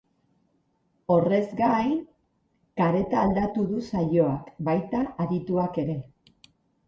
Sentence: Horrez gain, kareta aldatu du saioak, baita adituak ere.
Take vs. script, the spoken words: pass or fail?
pass